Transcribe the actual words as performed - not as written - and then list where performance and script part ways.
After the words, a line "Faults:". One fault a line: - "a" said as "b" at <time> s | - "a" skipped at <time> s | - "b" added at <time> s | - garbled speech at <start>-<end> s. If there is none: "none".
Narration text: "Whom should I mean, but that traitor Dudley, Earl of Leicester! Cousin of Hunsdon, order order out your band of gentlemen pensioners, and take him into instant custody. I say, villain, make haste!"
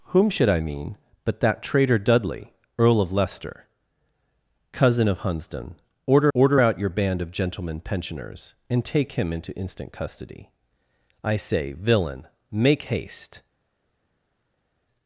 "Whom should I mean, but that traitor Dudley, Earl of Leicester! Cousin of Hunsdon, order order out your band of gentlemen pensioners, and take him into instant custody. I say, villain, make haste!"
Faults:
none